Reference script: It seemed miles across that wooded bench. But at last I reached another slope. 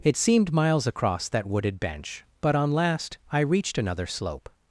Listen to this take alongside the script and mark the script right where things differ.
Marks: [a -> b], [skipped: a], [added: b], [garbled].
It seemed miles across that wooded bench. But [at -> on] last I reached another slope.